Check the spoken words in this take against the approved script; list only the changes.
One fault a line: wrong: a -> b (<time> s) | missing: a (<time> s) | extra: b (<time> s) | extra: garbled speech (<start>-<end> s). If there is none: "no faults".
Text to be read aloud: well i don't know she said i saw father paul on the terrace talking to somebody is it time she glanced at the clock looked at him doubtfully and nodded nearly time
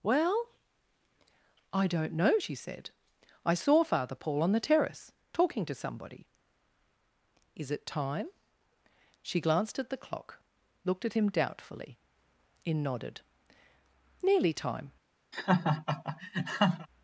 wrong: and -> in (12.6 s)